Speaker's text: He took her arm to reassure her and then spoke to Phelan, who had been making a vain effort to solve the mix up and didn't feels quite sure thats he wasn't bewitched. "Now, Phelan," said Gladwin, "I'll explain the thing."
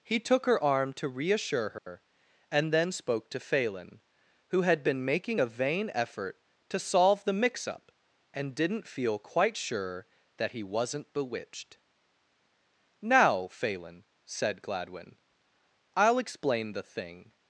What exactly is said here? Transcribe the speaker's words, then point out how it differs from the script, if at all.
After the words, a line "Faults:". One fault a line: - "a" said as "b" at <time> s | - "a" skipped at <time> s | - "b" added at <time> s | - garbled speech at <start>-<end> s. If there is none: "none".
He took her arm to reassure her and then spoke to Phelan, who had been making a vain effort to solve the mix up and didn't feel quite sure that he wasn't bewitched. "Now, Phelan," said Gladwin, "I'll explain the thing."
Faults:
- "feels" said as "feel" at 8.9 s
- "thats" said as "that" at 10.4 s